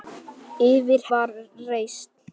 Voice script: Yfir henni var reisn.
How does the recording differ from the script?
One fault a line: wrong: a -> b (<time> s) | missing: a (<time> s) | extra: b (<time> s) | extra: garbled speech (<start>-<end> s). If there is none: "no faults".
missing: henni (1.1 s)